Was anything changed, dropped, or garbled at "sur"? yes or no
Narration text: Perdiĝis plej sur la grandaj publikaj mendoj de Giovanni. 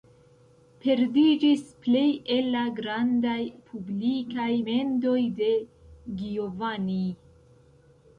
yes